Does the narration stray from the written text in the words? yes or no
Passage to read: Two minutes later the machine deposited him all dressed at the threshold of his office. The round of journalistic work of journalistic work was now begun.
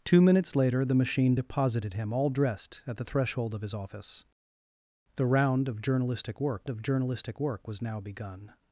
no